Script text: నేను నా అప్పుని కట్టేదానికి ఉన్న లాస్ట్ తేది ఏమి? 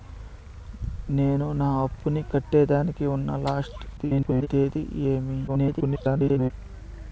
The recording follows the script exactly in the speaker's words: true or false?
false